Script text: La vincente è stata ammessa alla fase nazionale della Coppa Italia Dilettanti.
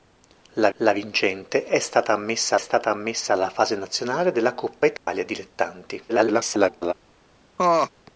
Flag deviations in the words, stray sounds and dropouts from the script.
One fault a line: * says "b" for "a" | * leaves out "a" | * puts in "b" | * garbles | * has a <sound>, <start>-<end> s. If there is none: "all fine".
* puts in "la"
* puts in "stata ammessa"
* has a dropout, 5.0-5.1 s
* garbles
* has a laugh, 7.6-7.9 s